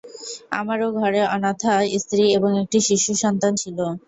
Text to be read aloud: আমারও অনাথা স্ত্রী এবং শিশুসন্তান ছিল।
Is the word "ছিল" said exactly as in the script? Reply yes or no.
yes